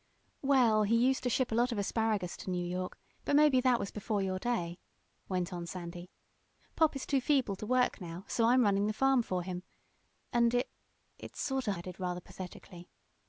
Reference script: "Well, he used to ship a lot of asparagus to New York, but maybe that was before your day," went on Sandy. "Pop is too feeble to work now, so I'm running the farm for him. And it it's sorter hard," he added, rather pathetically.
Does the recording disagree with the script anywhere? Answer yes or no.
yes